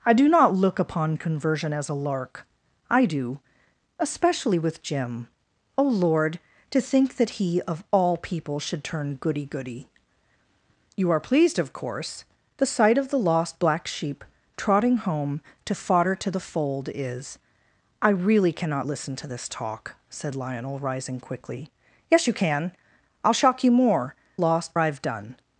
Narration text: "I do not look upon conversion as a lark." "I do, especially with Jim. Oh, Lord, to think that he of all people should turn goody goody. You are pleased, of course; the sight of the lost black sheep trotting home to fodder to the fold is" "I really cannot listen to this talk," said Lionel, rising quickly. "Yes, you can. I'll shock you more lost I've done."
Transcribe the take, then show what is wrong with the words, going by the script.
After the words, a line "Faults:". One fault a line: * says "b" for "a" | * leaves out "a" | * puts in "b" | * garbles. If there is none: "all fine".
"I do not look upon conversion as a lark." "I do, especially with Jim. Oh, Lord, to think that he of all people should turn goody goody. You are pleased, of course; the sight of the lost black sheep trotting home to fodder to the fold is" "I really cannot listen to this talk," said Lionel, rising quickly. "Yes, you can. I'll shock you more lost I've done."
Faults:
all fine